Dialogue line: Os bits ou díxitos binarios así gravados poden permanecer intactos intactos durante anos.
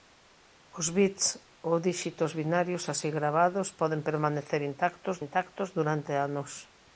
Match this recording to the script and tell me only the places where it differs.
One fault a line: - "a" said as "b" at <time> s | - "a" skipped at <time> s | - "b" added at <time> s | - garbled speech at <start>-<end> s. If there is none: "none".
none